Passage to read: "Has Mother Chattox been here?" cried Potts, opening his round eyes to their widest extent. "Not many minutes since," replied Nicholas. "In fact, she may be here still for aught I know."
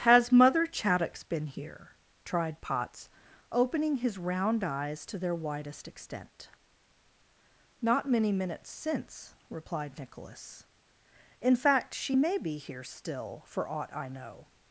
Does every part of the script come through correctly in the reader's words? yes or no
no